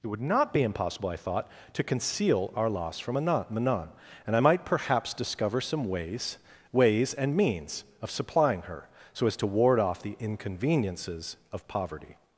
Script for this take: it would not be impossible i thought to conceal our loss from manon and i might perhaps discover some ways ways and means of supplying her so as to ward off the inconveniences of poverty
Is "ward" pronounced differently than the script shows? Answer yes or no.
no